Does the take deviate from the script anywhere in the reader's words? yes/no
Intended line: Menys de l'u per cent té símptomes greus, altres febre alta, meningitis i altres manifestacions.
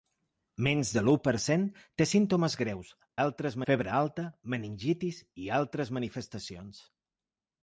no